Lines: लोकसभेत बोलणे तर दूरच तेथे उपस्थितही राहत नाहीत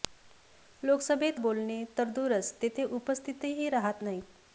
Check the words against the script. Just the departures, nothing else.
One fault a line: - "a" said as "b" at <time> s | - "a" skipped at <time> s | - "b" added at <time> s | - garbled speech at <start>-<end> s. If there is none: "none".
none